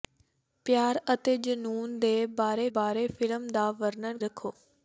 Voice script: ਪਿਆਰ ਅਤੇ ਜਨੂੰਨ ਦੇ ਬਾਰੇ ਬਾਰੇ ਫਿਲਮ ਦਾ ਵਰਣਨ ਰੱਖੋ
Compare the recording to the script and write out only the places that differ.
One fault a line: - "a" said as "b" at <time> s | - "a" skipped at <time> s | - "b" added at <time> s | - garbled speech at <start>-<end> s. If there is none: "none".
none